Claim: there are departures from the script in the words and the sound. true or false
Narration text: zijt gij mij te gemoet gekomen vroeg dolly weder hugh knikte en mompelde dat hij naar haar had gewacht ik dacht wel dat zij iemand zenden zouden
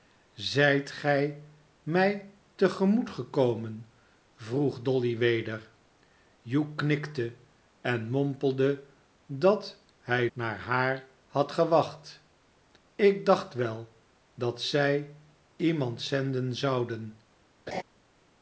true